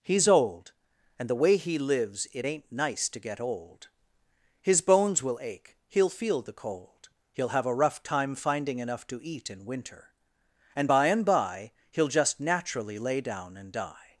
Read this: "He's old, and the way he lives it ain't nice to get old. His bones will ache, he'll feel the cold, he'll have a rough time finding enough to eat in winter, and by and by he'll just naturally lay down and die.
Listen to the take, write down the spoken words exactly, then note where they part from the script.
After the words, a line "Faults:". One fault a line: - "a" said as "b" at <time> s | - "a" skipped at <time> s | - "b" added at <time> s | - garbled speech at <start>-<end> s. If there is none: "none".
"He's old, and the way he lives it ain't nice to get old. His bones will ache, he'll feel the cold, he'll have a rough time finding enough to eat in winter, and by and by he'll just naturally lay down and die.
Faults:
none